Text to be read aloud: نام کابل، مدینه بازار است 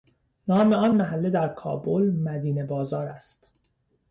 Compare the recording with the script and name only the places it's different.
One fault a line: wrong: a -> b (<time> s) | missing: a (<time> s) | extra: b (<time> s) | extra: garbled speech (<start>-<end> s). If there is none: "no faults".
extra: آن محله در (0.7 s)